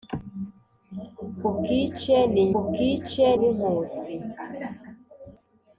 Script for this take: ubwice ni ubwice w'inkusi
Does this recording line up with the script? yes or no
yes